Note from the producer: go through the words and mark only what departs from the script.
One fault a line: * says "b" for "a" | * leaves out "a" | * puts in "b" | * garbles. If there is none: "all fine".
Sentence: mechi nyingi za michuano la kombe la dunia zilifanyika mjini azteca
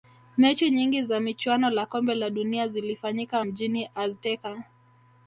all fine